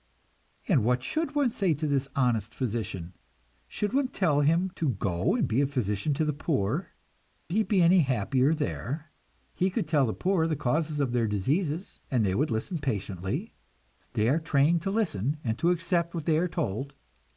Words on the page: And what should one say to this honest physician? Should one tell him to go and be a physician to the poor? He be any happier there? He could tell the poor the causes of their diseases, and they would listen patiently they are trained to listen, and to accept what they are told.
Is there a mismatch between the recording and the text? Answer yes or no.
no